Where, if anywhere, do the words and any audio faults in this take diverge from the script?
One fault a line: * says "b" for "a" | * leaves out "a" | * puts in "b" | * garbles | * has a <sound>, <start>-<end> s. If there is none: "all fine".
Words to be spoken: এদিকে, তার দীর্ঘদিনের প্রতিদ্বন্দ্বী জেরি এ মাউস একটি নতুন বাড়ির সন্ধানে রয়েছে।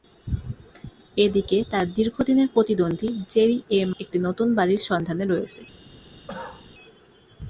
* leaves out "মাউস"
* has a cough, 6.3-6.7 s